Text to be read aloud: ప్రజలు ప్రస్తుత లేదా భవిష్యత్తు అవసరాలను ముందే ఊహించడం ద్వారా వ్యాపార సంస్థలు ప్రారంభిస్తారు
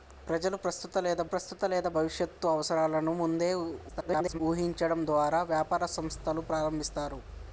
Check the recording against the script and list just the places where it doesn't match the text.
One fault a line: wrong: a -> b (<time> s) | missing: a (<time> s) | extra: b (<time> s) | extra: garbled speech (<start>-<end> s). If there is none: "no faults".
extra: ప్రస్తుత లేదా (1.3 s)
extra: garbled speech (3.9-4.4 s)